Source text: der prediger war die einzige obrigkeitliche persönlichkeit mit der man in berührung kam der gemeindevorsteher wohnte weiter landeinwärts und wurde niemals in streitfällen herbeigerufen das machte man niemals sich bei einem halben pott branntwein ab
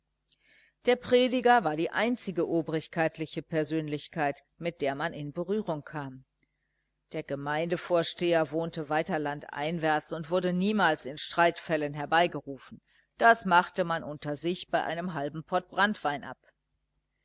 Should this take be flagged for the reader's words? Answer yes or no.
yes